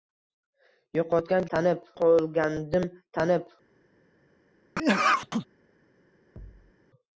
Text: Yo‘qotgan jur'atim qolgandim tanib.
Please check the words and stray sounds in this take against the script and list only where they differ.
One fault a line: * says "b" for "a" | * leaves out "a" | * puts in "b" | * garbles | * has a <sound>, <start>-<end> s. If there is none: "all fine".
* says "tanib" for "jur'atim"
* has a sneeze, 4.7-5.5 s
* has a thud, 6.4-6.7 s